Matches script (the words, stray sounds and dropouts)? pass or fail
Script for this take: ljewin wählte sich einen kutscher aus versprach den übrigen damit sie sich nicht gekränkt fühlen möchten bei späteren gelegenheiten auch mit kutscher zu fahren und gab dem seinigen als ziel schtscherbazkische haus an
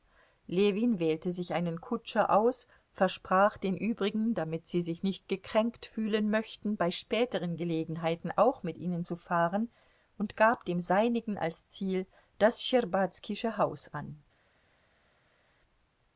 fail